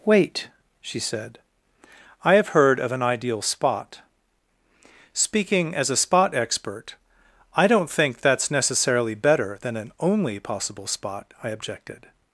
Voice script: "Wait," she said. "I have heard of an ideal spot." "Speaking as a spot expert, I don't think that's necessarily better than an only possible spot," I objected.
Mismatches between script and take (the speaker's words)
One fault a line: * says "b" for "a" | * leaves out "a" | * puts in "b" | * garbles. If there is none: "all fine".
all fine